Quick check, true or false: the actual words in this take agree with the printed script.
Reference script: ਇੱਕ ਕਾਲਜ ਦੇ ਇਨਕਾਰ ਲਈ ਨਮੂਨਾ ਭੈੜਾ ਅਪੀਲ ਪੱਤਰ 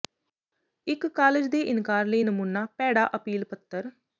true